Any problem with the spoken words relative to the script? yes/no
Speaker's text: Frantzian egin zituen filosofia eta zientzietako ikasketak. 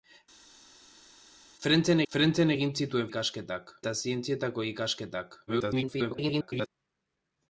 yes